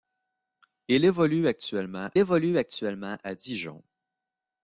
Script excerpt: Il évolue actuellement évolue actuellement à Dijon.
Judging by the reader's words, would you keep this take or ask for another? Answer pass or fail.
pass